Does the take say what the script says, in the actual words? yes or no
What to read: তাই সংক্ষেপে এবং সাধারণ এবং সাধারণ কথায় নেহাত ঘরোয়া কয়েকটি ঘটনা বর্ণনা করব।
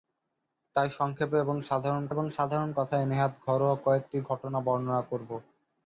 yes